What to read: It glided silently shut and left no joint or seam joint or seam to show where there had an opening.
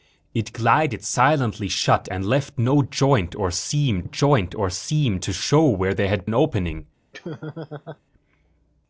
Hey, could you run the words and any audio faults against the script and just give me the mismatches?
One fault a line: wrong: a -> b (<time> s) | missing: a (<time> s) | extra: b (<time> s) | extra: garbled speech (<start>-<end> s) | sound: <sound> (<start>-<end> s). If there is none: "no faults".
sound: laugh (7.1-8.0 s)